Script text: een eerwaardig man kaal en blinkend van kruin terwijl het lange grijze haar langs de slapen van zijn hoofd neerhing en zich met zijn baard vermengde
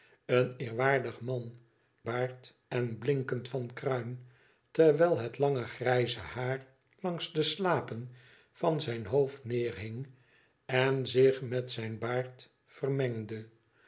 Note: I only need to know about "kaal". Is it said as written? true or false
false